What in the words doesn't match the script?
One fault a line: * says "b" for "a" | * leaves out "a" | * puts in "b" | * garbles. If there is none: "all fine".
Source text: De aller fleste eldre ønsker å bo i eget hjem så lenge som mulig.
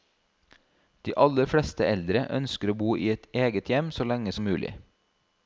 all fine